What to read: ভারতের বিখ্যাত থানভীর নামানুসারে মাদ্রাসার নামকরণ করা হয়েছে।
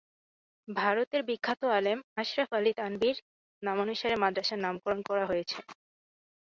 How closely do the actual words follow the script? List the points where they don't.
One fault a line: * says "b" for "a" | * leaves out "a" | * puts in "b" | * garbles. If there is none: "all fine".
* puts in "আলেম আশরাফ আলী"